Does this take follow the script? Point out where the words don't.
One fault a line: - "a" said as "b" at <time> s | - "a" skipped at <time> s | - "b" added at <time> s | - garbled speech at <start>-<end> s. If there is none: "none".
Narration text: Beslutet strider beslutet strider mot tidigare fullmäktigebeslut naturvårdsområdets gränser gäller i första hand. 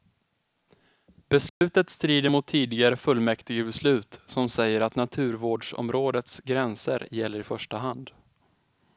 - "beslutet strider" skipped at 2.3 s
- "som säger att" added at 4.3 s